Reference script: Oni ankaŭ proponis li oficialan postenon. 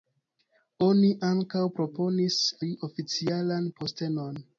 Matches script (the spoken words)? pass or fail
pass